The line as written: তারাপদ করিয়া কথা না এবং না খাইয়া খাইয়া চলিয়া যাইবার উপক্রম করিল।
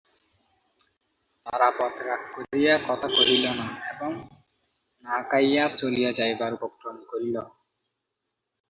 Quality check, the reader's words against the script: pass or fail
fail